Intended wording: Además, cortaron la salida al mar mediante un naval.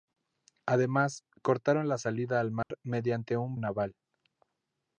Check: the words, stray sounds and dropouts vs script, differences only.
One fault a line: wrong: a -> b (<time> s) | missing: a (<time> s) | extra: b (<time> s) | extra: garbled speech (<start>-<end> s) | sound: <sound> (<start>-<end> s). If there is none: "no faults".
sound: dropout (2.6-2.7 s)